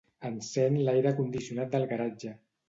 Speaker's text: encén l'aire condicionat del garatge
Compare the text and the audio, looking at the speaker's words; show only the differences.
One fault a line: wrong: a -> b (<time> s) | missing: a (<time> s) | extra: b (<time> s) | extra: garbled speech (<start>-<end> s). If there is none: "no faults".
no faults